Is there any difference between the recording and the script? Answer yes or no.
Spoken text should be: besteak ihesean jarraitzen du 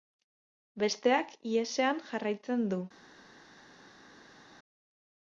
no